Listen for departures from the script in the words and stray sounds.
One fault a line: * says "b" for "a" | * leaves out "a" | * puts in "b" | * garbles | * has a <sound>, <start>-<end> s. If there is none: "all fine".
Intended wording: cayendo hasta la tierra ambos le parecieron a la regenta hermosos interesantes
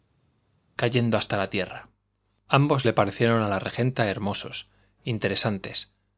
all fine